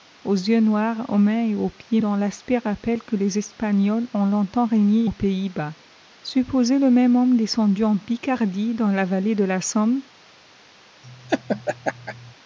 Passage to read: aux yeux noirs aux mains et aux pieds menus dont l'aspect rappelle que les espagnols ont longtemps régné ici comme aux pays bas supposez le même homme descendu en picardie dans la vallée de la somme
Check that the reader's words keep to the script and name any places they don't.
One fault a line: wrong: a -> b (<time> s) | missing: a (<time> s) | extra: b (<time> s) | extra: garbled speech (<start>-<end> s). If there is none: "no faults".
missing: menus (2.0 s)
missing: ici comme (5.0 s)